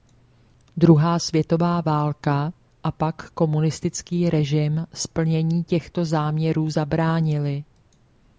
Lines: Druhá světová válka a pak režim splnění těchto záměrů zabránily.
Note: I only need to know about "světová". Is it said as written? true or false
true